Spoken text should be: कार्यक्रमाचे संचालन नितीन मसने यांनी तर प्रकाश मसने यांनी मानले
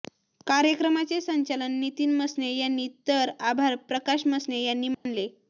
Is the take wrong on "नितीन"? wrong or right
right